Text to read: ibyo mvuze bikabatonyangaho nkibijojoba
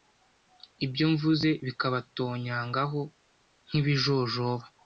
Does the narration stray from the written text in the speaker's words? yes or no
no